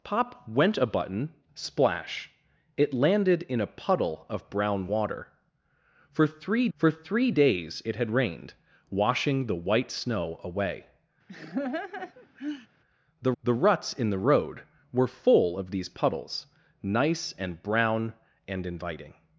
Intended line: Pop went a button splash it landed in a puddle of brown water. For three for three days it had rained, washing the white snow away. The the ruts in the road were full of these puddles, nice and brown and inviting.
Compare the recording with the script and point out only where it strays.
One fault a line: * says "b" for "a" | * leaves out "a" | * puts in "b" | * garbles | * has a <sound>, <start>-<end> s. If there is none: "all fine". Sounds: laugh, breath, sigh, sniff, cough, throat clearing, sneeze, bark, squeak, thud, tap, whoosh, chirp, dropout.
* has a laugh, 11.3-12.7 s